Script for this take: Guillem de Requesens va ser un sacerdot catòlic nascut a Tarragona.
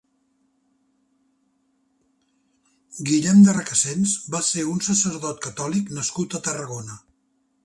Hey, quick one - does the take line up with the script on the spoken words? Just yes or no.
yes